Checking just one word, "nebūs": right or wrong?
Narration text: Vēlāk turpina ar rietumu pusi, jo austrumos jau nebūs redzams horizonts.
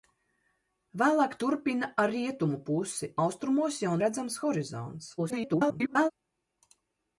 wrong